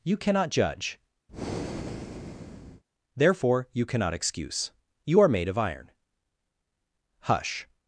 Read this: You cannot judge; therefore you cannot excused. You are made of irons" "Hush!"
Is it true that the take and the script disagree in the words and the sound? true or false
true